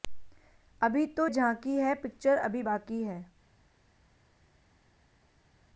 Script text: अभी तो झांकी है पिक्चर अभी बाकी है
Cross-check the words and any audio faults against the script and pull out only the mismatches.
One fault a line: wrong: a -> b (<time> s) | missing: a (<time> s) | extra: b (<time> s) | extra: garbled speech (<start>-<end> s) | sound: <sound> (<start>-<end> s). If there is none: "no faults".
no faults